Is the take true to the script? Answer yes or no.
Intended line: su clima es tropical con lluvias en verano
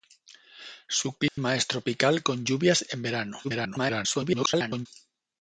no